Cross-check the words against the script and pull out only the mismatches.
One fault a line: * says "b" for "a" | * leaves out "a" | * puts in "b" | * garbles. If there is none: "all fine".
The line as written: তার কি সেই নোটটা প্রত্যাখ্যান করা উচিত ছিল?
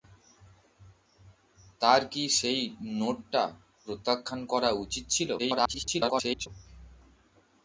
* garbles